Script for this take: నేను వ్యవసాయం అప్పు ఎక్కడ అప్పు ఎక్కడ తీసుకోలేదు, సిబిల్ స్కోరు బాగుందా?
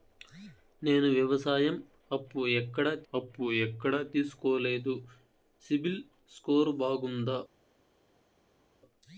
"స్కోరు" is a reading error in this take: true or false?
false